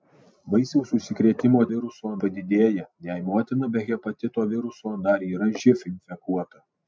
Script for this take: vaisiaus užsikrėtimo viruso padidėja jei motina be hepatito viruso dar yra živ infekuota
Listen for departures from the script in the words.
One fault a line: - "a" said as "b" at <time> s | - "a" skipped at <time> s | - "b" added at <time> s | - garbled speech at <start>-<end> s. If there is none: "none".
none